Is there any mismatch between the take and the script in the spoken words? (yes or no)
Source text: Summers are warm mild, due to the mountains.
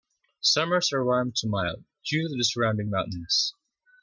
yes